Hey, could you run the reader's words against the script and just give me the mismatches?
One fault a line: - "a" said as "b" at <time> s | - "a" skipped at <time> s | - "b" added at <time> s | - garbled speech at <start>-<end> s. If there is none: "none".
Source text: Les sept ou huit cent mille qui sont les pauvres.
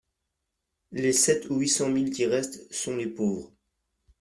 - "restent" added at 2.3 s